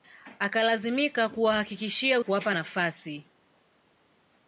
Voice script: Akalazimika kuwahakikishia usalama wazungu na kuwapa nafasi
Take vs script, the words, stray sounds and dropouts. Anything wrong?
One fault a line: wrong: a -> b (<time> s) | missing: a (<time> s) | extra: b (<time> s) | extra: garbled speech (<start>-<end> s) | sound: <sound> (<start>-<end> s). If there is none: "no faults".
missing: usalama wazungu na (2.2 s)